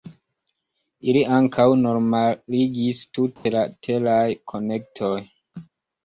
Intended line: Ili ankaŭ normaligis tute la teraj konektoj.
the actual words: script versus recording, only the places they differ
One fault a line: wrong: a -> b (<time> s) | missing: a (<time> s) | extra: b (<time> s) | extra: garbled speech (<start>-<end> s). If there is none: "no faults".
no faults